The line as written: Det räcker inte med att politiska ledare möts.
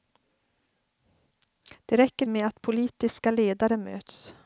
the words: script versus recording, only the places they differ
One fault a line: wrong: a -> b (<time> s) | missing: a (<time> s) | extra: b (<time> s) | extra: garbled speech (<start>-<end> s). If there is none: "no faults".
missing: inte (2.3 s)